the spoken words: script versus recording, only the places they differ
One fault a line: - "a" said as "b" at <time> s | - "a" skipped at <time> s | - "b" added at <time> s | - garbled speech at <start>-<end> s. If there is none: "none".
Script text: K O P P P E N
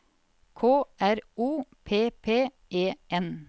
- "R" added at 1.0 s
- "P" skipped at 2.5 s